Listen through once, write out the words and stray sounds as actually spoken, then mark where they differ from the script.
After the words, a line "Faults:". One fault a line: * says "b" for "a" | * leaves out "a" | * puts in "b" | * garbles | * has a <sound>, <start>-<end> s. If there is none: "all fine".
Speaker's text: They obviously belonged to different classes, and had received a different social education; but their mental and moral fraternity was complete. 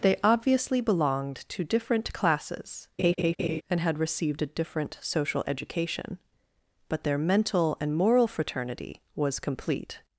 They obviously belonged to different classes, and had received a different social education; but their mental and moral fraternity was complete.
Faults:
* has a laugh, 3.0-3.6 s